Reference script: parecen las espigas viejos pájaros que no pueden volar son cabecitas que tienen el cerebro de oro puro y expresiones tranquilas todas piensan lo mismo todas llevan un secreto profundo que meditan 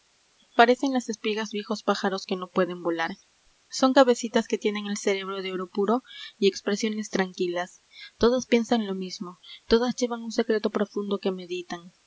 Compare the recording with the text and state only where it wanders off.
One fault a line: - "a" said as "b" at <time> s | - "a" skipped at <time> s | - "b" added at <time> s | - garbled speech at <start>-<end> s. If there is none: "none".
none